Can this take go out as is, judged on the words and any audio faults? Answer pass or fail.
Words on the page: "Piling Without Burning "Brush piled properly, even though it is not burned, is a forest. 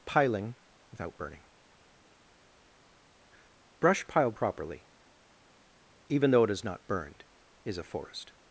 pass